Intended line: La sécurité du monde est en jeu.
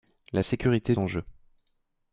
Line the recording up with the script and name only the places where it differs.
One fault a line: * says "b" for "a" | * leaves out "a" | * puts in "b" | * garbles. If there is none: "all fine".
* leaves out "du monde est"